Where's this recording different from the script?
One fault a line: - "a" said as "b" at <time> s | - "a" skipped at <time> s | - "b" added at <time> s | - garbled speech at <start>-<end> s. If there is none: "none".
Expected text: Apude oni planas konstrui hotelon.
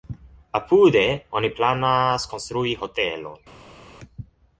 none